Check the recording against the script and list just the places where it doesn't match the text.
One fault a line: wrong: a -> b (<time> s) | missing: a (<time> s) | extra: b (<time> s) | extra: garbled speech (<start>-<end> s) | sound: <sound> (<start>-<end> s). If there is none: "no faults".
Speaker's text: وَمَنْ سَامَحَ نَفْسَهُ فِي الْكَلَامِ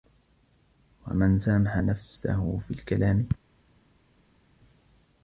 no faults